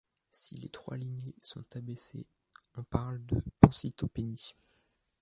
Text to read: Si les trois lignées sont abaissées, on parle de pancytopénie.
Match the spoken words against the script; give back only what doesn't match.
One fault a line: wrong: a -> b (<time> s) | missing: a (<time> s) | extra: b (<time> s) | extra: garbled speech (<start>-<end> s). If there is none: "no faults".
no faults